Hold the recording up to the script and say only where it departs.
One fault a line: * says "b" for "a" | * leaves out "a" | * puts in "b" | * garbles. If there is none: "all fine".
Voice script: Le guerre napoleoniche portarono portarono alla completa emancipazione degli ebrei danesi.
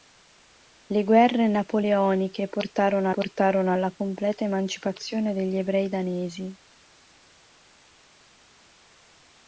all fine